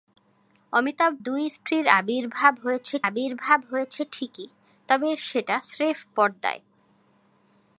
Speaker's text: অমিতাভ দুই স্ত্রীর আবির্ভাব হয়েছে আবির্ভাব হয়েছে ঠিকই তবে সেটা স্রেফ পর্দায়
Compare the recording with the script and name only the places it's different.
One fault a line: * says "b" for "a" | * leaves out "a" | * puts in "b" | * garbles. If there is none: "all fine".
all fine